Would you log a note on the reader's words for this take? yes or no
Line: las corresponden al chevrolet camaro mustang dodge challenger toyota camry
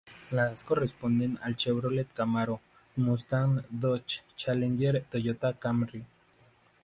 no